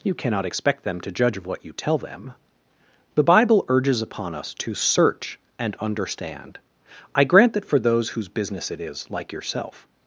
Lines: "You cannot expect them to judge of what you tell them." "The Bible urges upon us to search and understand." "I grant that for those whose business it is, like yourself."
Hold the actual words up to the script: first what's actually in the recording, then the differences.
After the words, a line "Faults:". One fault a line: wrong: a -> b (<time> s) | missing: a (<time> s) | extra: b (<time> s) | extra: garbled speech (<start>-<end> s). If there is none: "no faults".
"You cannot expect them to judge of what you tell them." "The Bible urges upon us to search and understand." "I grant that for those whose business it is, like yourself."
Faults:
no faults